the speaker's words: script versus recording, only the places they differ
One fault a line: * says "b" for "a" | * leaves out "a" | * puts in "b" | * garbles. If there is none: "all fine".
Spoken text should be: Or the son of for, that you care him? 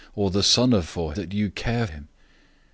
all fine